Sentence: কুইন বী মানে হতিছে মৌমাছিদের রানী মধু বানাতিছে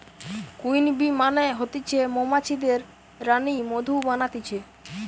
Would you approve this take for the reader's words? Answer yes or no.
yes